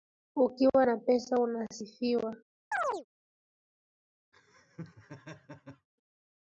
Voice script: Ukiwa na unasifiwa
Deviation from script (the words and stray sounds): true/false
true